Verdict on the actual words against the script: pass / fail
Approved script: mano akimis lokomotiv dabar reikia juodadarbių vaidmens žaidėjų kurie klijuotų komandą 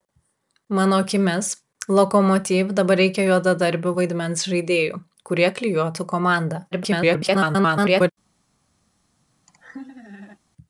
fail